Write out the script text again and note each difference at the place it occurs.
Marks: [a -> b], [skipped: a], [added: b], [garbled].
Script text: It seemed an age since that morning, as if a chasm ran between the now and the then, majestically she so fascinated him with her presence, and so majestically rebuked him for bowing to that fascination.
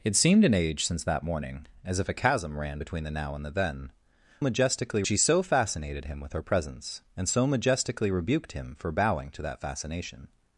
It seemed an age since that morning, as if a chasm ran between the now and the then, majestically she so fascinated him with her presence, and so majestically rebuked him for bowing to that fascination.